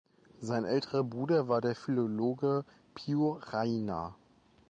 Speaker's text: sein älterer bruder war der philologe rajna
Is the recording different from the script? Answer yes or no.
yes